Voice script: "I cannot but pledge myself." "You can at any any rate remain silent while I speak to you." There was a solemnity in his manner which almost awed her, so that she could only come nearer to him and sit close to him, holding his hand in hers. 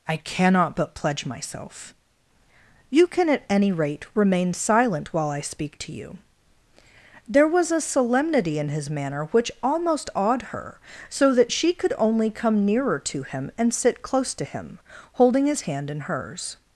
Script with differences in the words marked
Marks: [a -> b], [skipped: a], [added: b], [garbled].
"I cannot but pledge myself." "You can at any [skipped: any] rate remain silent while I speak to you." There was a solemnity in his manner which almost awed her, so that she could only come nearer to him and sit close to him, holding his hand in hers.